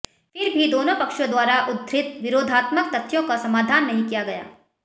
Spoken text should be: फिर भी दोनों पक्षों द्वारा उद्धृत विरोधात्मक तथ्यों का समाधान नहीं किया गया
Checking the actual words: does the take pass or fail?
pass